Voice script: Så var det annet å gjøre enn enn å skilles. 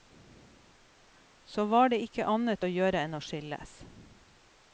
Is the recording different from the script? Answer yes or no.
yes